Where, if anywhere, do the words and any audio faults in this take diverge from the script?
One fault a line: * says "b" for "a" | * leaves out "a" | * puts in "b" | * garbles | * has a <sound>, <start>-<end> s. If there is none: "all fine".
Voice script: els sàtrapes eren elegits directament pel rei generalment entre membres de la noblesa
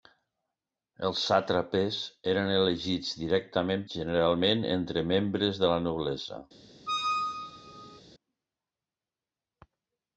* leaves out "pel rei"
* has a squeak, 6.9-8.0 s